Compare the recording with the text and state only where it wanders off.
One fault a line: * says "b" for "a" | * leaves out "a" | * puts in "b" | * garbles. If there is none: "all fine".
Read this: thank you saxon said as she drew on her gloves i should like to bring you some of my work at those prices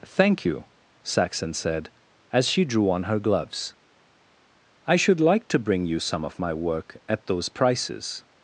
all fine